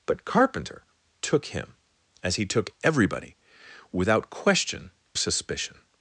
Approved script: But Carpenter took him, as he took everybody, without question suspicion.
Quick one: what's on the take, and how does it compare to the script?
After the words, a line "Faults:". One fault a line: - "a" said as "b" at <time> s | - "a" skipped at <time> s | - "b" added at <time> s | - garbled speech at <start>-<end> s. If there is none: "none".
But Carpenter took him, as he took everybody, without question suspicion.
Faults:
none